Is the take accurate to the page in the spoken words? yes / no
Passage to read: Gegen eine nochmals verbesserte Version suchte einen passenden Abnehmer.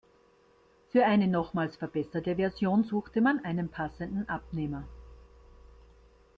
no